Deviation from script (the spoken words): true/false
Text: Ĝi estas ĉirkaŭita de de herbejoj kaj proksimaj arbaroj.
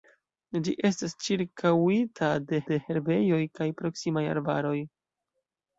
false